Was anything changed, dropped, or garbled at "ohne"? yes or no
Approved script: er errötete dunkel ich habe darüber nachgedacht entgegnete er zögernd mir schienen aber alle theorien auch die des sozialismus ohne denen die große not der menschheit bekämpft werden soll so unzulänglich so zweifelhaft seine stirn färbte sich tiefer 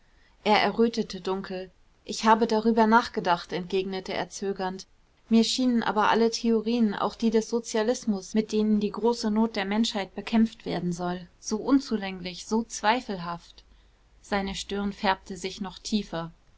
yes